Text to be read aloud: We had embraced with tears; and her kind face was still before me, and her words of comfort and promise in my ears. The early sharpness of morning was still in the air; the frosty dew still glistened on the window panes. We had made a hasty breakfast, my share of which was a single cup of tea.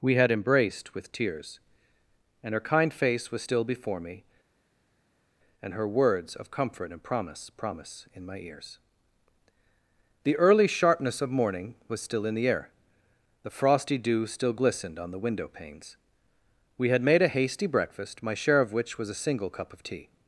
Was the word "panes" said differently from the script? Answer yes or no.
no